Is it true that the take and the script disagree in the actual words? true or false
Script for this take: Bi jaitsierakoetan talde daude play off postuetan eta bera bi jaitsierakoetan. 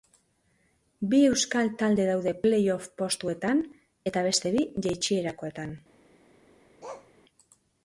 true